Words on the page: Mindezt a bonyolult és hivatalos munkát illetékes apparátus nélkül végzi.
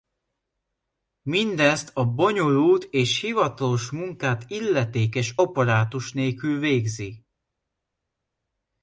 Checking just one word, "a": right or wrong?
right